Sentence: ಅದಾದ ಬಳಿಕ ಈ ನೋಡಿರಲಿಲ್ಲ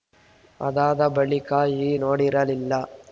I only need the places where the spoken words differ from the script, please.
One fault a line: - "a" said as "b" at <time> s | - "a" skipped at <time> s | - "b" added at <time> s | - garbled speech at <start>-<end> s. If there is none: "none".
none